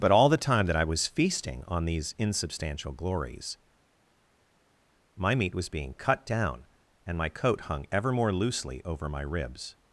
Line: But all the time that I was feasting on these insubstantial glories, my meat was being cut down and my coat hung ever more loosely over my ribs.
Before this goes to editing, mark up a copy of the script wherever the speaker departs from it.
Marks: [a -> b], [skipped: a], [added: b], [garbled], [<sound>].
But all the time that I was feasting on these insubstantial glories, my meat was being cut down and my coat hung ever more loosely over my ribs.